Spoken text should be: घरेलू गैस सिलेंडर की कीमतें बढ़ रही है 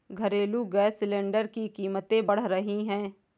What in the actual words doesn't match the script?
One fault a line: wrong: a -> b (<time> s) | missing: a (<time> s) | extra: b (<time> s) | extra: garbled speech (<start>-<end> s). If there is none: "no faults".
no faults